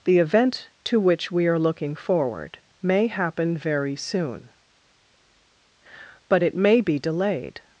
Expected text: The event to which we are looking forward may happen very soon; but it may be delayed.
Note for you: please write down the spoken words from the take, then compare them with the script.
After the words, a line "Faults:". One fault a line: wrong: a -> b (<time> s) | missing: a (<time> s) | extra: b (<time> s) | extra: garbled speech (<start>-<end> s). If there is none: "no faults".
The event to which we are looking forward may happen very soon; but it may be delayed.
Faults:
no faults